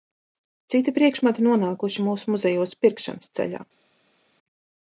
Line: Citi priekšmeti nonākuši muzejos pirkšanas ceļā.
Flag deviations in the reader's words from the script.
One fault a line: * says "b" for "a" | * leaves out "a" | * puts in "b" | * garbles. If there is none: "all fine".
* puts in "mūsu"